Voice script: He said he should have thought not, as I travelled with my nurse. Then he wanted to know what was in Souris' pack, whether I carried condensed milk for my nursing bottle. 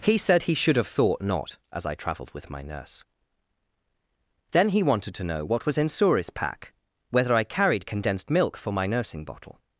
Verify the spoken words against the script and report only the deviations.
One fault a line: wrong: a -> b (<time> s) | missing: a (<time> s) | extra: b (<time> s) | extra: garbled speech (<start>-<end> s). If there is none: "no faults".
no faults